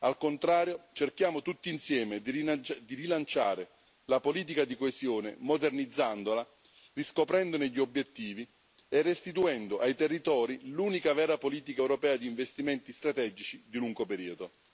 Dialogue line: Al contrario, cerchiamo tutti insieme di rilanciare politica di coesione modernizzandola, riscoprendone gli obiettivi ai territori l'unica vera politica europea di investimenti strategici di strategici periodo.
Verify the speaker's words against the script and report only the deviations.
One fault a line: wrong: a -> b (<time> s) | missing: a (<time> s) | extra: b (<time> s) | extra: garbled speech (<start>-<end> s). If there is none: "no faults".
extra: la (4.0 s)
extra: e restituendo (8.9 s)
wrong: strategici -> lungo (13.8 s)